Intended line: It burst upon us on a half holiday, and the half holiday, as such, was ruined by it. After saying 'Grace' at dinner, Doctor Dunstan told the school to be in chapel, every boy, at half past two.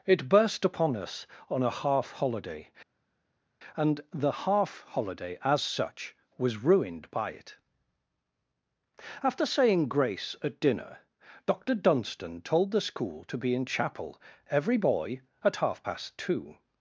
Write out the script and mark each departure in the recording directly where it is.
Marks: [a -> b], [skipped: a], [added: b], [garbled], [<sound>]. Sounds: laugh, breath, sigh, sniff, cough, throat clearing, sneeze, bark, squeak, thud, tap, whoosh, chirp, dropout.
It burst upon us on a half holiday, and the half holiday, as such, was ruined by it. After saying 'Grace' at dinner, Doctor Dunstan told the school to be in chapel, every boy, at half past two.